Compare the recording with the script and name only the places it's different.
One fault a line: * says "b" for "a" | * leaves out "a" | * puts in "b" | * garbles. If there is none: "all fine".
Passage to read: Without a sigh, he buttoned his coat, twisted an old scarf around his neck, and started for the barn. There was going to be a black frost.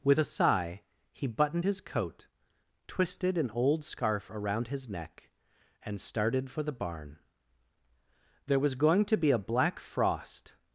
* says "With" for "Without"